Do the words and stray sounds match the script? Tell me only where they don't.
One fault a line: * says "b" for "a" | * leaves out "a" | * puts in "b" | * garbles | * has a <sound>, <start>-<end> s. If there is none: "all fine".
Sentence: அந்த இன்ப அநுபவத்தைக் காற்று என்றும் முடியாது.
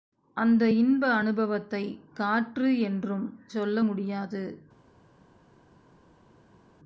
* puts in "சொல்ல"